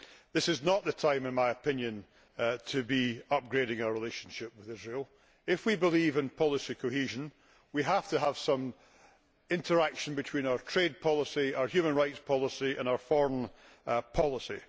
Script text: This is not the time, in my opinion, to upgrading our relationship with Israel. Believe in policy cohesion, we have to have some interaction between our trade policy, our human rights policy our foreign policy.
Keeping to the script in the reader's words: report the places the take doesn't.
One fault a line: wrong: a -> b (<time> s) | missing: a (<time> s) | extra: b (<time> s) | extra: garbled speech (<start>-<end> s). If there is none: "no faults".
extra: be (2.8 s)
extra: If we (5.5 s)
extra: and (12.8 s)